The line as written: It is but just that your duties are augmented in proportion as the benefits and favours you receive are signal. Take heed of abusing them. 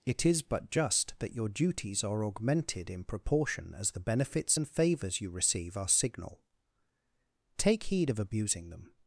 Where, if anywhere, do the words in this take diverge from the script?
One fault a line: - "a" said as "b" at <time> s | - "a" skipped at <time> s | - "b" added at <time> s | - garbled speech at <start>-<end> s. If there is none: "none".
none